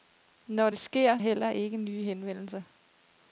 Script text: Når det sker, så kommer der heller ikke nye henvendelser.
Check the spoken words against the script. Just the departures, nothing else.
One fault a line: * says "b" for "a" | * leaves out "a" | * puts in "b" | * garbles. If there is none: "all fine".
* leaves out "så kommer der"